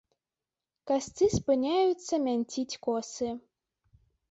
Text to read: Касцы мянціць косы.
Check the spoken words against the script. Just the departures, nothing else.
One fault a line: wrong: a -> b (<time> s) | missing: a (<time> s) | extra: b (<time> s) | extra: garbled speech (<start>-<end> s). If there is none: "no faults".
extra: спыняюцца (1.4 s)